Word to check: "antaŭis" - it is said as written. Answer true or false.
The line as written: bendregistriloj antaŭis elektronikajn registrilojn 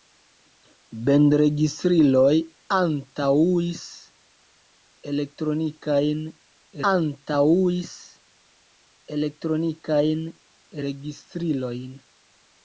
true